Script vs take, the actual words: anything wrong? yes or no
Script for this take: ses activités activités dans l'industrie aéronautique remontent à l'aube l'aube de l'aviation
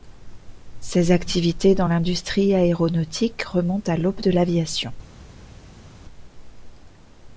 yes